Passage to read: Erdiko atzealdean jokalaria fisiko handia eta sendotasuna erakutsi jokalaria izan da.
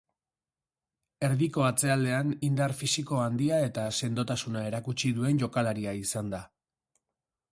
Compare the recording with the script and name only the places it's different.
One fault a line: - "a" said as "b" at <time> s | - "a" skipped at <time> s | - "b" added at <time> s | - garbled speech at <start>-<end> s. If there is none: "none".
- "jokalaria" said as "indar" at 2.5 s
- "duen" added at 5.2 s